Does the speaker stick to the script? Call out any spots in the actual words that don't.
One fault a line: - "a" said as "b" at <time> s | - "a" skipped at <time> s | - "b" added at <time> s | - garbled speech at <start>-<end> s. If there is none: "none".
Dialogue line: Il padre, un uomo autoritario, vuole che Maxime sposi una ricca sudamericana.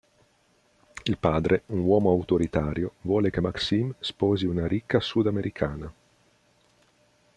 none